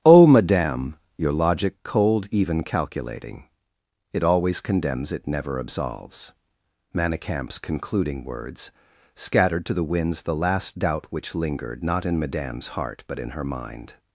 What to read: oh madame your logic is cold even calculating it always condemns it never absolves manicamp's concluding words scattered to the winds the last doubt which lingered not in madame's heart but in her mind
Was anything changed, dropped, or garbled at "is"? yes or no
yes